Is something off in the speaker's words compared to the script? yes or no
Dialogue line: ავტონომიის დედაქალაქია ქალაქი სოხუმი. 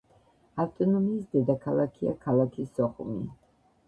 no